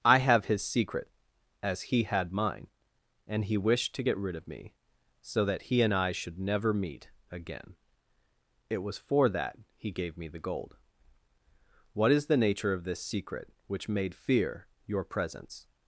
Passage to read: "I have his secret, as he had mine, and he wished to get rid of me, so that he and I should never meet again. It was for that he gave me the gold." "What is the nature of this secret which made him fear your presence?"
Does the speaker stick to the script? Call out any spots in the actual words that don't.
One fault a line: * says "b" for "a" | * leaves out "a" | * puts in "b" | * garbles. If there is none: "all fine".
* leaves out "him"